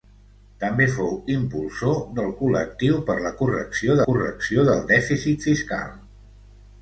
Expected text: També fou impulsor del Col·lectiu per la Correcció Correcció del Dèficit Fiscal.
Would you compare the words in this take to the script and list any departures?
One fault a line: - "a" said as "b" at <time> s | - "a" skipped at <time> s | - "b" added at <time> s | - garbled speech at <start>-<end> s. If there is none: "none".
none